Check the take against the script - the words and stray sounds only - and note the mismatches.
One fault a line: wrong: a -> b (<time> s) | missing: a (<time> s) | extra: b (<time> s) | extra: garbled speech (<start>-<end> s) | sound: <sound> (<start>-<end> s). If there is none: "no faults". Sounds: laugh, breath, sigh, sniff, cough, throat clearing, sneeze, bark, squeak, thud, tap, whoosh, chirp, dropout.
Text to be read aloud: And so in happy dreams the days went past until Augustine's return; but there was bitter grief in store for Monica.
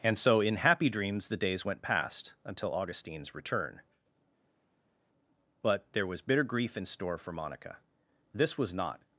extra: This was not (8.3 s)